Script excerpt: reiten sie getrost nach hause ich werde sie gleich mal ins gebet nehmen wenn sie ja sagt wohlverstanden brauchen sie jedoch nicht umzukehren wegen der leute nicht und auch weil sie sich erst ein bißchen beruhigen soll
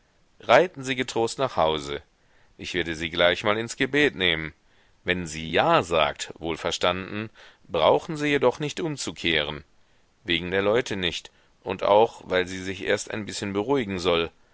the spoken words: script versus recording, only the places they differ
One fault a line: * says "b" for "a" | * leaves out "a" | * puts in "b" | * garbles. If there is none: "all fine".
all fine